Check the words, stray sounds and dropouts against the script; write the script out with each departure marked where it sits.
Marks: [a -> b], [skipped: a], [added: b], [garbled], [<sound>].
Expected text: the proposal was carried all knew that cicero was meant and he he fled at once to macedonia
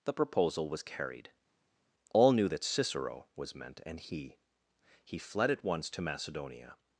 the proposal was carried all knew that cicero was meant and he he fled at once to macedonia